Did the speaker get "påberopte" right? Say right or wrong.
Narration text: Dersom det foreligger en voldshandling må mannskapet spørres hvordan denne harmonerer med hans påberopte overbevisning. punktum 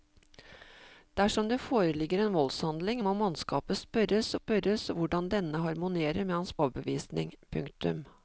wrong